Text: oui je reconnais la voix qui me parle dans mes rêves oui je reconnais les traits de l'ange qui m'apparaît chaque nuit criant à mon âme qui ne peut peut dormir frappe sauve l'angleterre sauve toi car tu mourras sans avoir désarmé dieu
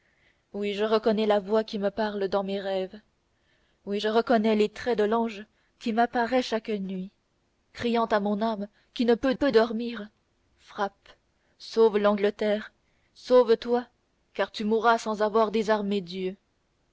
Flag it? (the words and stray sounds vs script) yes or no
no